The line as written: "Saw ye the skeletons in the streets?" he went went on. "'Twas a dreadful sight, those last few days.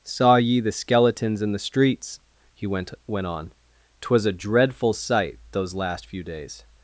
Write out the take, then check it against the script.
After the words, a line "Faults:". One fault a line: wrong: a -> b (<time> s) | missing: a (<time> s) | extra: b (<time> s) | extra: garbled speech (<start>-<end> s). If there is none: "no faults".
"Saw ye the skeletons in the streets?" he went went on. "'Twas a dreadful sight, those last few days.
Faults:
no faults